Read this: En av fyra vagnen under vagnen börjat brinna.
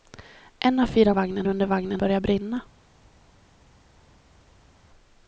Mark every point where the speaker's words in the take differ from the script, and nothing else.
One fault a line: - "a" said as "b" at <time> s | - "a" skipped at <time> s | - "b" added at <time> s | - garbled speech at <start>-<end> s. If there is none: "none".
none